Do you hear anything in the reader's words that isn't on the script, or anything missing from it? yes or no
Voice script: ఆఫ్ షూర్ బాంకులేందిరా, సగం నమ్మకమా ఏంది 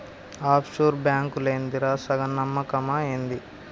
no